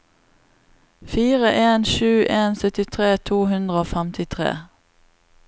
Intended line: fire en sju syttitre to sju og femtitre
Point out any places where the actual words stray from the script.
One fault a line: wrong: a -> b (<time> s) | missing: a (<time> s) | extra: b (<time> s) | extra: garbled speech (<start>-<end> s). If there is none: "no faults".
extra: en (2.4 s)
wrong: sju -> hundre (3.5 s)